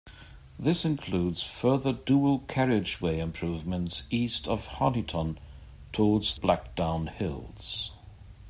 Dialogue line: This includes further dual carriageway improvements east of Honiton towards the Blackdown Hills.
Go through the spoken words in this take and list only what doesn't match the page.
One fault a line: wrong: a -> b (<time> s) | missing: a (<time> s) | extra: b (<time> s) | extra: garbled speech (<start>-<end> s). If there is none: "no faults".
missing: the (6.4 s)